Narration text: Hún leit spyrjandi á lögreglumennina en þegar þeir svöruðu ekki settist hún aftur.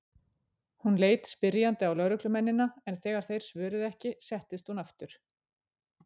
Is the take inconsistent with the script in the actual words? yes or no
no